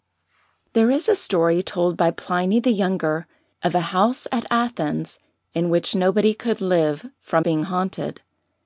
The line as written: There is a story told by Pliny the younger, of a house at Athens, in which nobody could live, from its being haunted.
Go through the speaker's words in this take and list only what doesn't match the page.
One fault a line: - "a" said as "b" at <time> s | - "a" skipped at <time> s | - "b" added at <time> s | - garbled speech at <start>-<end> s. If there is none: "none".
- "its" skipped at 7.5 s